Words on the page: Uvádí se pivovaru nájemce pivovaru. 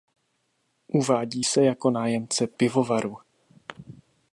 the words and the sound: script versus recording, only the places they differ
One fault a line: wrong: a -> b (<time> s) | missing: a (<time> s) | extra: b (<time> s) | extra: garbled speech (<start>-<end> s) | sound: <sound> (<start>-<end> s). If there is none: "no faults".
wrong: pivovaru -> jako (1.6 s)